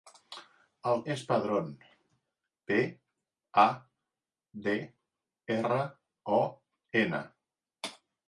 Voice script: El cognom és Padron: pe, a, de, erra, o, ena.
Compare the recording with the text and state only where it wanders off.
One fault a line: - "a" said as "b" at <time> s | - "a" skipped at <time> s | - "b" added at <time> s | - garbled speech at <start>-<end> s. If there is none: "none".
- "cognom" skipped at 1.0 s